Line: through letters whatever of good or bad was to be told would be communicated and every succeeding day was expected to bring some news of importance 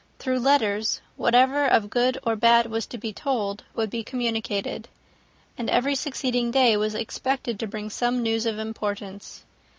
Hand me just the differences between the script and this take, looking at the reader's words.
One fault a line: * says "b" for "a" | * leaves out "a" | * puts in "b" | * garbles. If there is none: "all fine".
all fine